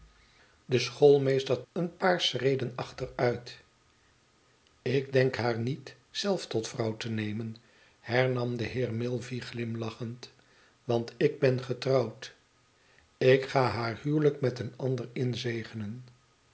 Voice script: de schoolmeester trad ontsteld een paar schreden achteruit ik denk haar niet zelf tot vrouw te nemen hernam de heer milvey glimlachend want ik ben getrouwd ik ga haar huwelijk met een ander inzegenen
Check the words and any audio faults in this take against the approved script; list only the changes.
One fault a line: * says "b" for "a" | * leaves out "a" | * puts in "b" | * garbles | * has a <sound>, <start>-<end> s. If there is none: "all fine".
* leaves out "trad ontsteld"